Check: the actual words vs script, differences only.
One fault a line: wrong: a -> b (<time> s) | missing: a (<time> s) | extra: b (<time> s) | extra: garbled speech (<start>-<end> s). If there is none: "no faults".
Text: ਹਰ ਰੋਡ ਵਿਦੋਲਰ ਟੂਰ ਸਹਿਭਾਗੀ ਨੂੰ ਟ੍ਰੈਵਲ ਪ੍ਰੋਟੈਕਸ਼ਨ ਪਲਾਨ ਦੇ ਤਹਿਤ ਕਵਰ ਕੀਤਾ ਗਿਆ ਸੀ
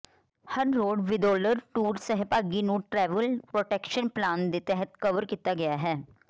wrong: ਸੀ -> ਹੈ (5.8 s)